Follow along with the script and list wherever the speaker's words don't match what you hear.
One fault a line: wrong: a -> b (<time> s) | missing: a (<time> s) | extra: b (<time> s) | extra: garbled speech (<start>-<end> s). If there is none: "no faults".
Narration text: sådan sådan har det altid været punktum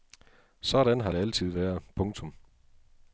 missing: sådan (1.0 s)